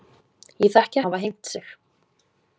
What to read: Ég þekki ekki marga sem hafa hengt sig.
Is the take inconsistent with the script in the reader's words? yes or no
yes